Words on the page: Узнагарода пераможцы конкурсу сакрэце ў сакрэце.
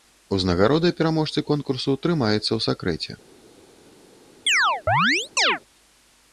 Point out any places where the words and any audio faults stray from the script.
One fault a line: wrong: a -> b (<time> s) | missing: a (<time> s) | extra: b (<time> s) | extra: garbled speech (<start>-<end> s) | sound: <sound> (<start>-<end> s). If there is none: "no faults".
wrong: сакрэце -> трымаецца (2.0 s)
sound: chirp (4.5-5.6 s)